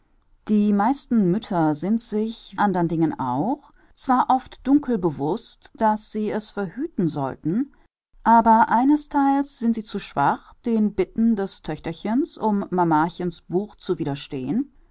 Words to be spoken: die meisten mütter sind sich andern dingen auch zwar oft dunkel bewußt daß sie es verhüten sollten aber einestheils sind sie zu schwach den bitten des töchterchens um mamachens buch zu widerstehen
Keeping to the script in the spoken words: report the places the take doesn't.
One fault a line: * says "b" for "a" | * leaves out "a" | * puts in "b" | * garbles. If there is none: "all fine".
all fine